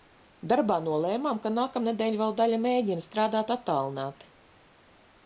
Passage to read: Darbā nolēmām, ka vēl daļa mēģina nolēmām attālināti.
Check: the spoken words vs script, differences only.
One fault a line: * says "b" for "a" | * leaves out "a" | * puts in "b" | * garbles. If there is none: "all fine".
* puts in "nākamnedēļ"
* says "strādāt" for "nolēmām"